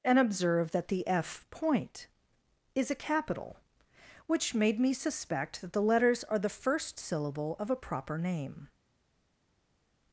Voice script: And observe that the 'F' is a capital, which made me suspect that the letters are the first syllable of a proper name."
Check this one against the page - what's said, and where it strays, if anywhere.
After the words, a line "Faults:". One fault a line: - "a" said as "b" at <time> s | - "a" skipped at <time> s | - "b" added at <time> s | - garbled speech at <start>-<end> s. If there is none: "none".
And observe that the 'F' point is a capital, which made me suspect that the letters are the first syllable of a proper name."
Faults:
- "point" added at 1.5 s